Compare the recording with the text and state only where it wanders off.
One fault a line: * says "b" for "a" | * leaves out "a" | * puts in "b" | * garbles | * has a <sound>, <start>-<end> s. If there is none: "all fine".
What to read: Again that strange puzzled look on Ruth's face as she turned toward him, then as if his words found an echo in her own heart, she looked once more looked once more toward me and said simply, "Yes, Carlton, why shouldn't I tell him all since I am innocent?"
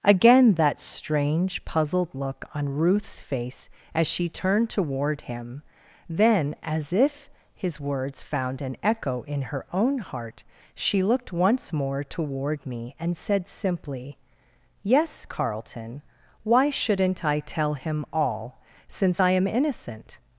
* leaves out "looked once more"